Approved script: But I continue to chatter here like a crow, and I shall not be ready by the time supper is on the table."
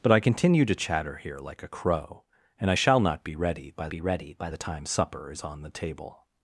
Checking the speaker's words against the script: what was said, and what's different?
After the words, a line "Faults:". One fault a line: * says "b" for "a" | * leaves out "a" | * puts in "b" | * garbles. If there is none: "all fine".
But I continue to chatter here like a crow, and I shall not be ready by be ready by the time supper is on the table."
Faults:
* puts in "be ready by"